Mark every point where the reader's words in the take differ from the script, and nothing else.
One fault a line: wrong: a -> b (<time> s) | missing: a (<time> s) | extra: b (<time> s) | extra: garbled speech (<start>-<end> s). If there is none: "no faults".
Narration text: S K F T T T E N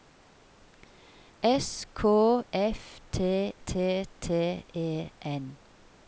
no faults